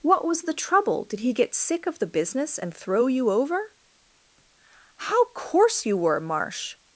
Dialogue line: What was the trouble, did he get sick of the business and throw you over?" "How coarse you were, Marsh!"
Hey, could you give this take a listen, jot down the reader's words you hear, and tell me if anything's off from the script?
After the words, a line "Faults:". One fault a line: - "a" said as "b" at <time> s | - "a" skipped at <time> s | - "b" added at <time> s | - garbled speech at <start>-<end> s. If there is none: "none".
What was the trouble, did he get sick of the business and throw you over?" "How coarse you were, Marsh!"
Faults:
none